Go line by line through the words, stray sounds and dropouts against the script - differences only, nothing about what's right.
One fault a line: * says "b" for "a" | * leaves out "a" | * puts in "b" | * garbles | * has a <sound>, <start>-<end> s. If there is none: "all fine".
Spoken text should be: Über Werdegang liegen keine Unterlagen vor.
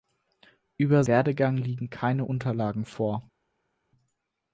all fine